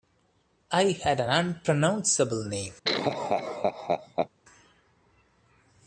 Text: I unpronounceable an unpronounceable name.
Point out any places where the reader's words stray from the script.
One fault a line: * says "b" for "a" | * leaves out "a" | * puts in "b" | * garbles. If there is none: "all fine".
* says "had" for "unpronounceable"